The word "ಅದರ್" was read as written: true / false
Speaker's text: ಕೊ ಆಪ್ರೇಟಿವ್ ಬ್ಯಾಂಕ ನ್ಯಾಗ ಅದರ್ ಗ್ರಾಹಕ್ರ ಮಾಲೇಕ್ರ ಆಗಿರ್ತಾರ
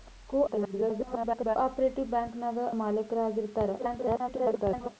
false